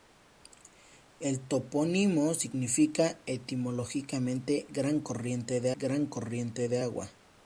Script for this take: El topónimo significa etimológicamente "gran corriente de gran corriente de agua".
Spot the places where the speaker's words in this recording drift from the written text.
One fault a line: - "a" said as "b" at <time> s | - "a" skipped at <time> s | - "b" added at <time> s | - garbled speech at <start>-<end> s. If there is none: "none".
none